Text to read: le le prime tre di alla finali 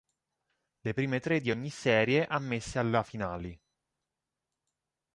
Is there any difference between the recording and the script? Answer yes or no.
yes